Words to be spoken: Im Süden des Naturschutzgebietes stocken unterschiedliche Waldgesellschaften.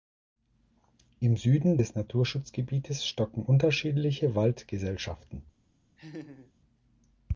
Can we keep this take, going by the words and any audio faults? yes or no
no